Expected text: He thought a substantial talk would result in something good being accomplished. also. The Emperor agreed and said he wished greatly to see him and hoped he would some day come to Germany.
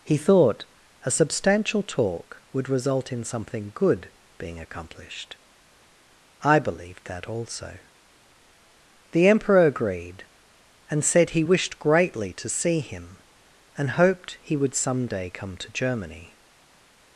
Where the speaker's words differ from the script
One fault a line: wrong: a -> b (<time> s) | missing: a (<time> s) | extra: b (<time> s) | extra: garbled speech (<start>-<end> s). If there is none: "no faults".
extra: I believed that (6.4 s)